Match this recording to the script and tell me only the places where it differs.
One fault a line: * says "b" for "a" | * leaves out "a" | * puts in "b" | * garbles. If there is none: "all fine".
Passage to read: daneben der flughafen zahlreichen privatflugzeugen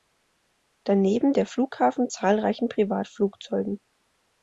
all fine